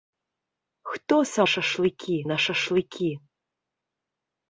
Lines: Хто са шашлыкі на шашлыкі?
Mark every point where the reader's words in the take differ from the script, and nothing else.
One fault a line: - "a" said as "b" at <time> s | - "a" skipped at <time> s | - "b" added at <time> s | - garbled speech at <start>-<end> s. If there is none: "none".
none